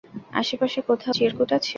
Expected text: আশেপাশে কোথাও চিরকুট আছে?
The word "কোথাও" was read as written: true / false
true